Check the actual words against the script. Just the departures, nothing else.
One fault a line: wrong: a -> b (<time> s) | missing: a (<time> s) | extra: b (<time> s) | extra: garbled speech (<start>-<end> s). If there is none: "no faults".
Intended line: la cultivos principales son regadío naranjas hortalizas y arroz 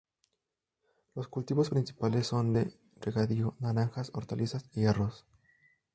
wrong: la -> los (1.1 s)
extra: de (2.5 s)